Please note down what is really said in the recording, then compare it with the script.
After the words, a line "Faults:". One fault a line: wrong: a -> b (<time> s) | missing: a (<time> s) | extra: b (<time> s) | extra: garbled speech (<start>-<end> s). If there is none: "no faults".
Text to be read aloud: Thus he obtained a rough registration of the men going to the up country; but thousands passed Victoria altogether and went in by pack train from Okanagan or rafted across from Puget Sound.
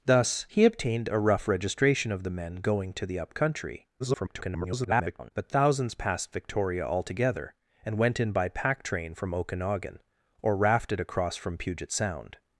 Thus he obtained a rough registration of the men going to the up country; [garbled] but thousands passed Victoria altogether and went in by pack train from Okanagan or rafted across from Puget Sound.
Faults:
extra: garbled speech (4.0-5.3 s)